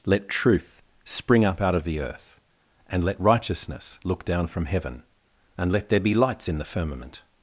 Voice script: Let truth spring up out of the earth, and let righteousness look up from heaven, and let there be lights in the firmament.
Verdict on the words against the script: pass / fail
fail